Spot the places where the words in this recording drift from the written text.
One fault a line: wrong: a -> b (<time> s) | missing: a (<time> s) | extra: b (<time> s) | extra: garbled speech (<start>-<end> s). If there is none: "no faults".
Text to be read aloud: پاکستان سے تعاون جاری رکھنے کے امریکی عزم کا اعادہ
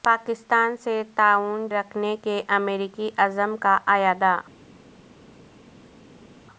missing: جاری (1.7 s)